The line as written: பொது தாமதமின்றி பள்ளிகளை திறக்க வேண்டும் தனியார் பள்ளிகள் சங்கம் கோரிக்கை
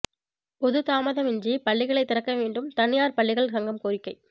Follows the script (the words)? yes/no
yes